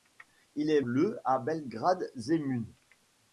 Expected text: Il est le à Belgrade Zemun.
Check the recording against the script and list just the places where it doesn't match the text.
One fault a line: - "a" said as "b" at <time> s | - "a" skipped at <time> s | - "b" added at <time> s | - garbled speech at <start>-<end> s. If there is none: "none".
none